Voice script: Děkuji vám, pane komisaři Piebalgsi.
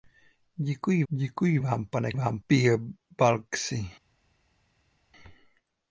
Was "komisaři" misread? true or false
true